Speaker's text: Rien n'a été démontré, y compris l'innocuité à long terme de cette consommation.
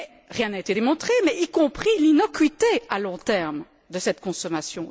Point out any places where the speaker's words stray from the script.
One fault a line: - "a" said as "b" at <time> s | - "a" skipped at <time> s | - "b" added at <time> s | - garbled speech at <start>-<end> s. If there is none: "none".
none